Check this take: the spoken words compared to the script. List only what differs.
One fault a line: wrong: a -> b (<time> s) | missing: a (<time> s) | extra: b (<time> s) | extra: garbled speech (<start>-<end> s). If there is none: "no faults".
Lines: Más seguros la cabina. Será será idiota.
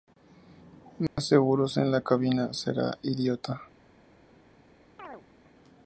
extra: en (1.8 s)
missing: será (3.0 s)